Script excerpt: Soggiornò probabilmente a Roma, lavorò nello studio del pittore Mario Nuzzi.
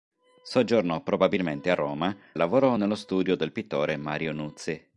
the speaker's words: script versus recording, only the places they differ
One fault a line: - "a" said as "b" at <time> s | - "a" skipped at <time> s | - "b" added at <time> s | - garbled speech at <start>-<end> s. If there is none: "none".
none